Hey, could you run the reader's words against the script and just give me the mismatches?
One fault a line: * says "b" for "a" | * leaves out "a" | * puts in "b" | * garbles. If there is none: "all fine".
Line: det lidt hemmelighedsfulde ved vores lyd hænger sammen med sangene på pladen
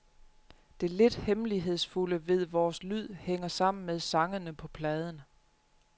all fine